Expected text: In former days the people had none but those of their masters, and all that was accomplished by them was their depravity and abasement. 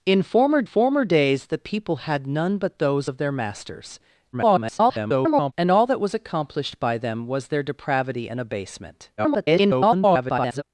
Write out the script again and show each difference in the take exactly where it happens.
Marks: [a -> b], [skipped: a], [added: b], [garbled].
In former [added: former] days the people had none but those of their masters, [garbled] and all that was accomplished by them was their depravity and abasement. [garbled]